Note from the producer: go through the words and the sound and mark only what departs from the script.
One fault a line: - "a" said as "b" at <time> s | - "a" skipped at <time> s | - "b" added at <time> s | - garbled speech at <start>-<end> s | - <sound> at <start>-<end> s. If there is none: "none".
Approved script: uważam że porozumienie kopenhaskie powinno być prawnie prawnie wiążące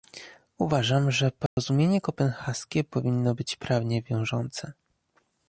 - dropout at 1.5-1.6 s
- "prawnie" skipped at 4.0 s